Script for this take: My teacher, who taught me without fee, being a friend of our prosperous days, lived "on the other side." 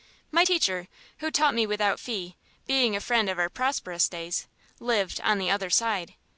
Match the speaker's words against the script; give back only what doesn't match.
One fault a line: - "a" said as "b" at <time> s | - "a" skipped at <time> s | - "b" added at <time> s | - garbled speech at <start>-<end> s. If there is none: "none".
none